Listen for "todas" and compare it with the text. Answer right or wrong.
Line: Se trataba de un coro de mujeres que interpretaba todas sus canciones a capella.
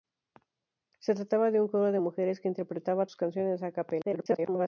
wrong